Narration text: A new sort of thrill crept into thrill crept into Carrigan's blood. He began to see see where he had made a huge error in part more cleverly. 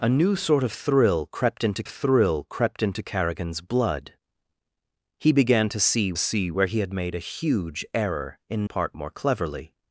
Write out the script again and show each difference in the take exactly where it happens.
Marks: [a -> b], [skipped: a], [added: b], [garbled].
A new sort of thrill crept into thrill crept into Carrigan's blood. He began to see see where he had made a huge error in part more cleverly.